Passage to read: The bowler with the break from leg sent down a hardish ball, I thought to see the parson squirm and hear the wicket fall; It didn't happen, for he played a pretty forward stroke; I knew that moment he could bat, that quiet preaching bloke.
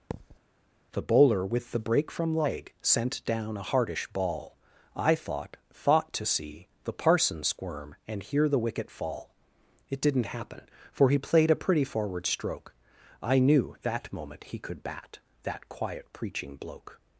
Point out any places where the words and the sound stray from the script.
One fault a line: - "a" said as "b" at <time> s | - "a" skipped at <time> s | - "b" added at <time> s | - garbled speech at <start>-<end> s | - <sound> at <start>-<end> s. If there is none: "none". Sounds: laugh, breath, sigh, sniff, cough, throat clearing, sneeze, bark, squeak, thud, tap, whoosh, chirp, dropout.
- thud at 0.1-0.4 s
- "thought" added at 5.7 s